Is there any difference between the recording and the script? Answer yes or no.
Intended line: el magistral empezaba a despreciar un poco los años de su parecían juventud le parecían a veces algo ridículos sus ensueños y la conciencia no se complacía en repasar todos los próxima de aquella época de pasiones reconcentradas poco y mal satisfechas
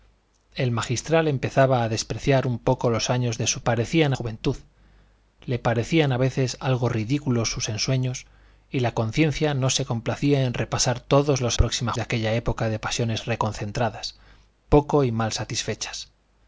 no